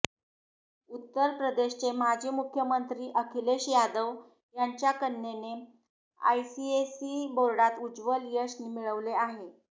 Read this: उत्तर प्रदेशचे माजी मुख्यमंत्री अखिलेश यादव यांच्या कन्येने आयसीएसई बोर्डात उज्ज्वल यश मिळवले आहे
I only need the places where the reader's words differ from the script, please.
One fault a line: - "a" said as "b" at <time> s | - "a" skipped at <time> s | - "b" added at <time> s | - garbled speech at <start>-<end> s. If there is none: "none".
none